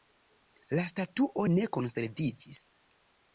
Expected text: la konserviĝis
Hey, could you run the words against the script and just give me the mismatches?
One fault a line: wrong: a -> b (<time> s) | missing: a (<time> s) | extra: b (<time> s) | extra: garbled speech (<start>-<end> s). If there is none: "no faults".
extra: statuo ne (0.9 s)